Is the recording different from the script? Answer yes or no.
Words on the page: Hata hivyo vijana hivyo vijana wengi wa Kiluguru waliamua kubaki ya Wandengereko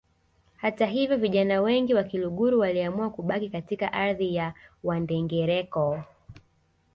yes